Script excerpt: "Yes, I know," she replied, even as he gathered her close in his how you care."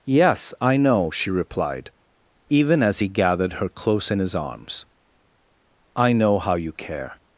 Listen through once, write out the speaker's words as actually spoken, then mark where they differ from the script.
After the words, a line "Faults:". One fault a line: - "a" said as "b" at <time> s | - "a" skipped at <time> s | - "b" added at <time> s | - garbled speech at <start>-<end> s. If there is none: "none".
"Yes, I know," she replied, even as he gathered her close in his arms. "I know how you care."
Faults:
- "arms I know" added at 4.3 s